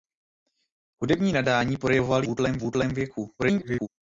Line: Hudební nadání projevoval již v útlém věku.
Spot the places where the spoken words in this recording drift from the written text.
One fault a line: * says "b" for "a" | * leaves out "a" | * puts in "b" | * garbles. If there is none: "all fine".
* says "útlém" for "již"
* garbles